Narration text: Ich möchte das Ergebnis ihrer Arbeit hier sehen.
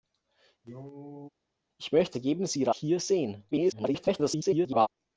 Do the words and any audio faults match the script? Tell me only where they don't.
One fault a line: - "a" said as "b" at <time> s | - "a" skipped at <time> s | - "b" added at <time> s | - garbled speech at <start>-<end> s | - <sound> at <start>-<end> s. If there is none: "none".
- cough at 0.6-1.3 s
- "das" skipped at 2.2 s
- "Arbeit" skipped at 2.7 s
- garbled speech at 3.5-4.9 s